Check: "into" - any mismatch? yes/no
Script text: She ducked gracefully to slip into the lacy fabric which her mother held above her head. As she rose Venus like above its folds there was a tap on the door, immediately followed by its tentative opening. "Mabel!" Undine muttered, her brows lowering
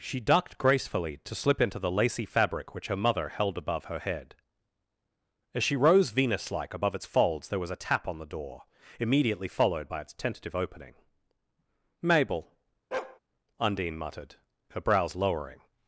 no